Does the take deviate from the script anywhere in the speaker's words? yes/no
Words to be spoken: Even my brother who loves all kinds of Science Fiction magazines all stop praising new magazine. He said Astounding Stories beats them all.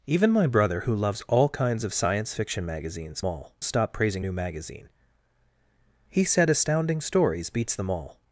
no